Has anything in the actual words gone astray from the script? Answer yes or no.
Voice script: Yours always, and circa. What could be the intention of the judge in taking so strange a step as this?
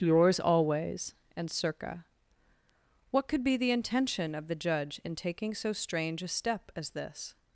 no